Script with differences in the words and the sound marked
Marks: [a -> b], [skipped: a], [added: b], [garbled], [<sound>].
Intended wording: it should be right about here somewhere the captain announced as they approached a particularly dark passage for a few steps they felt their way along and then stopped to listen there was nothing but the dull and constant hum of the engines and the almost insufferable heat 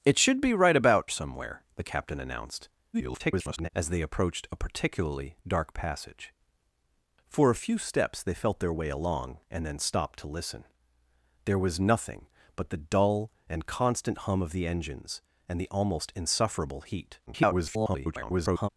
it should be right about [skipped: here] somewhere the captain announced [garbled] as they approached a particularly dark passage for a few steps they felt their way along and then stopped to listen there was nothing but the dull and constant hum of the engines and the almost insufferable heat [garbled]